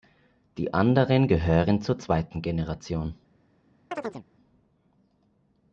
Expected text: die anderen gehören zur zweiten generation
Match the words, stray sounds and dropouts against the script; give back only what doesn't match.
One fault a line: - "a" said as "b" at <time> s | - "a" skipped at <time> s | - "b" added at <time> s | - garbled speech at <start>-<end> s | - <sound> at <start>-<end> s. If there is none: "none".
- chirp at 3.9-4.2 s